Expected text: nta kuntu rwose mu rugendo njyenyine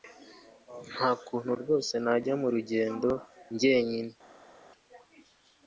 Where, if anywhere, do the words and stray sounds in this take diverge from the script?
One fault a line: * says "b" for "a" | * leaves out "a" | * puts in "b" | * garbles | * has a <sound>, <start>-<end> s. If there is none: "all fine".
* puts in "najya"